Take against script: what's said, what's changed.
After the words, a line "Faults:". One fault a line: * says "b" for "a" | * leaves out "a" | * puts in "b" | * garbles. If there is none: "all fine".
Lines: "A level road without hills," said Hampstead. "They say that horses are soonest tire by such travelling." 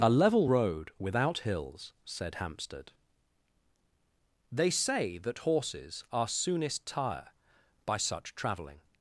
"A level road without hills," said Hampstead. "They say that horses are soonest tire by such travelling."
Faults:
all fine